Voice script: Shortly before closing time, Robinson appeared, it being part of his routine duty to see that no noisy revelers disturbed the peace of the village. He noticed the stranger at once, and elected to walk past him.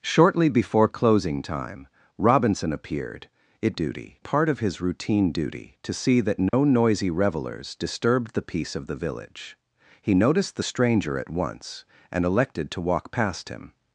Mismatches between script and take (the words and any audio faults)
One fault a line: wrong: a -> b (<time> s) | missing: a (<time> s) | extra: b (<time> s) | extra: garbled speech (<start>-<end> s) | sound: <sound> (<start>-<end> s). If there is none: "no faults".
wrong: being -> duty (3.7 s)
sound: dropout (6.5-6.5 s)